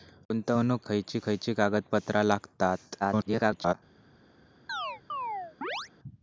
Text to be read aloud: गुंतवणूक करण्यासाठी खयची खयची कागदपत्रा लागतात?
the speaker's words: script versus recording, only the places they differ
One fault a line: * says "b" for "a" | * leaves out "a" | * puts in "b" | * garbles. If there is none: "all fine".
* leaves out "करण्यासाठी"
* garbles